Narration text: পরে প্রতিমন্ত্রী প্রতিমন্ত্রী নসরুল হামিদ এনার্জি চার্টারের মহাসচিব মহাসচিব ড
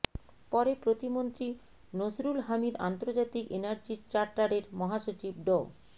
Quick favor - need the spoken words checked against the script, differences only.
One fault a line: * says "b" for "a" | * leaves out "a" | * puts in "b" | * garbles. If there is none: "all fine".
* leaves out "প্রতিমন্ত্রী"
* puts in "আন্তর্জাতিক"
* leaves out "মহাসচিব"